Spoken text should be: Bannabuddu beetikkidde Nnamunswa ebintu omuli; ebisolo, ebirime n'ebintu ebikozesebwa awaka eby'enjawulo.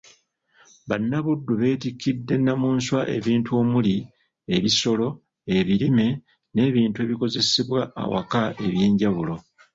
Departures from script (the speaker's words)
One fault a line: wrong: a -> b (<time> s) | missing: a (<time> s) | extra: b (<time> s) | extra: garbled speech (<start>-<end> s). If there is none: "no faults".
no faults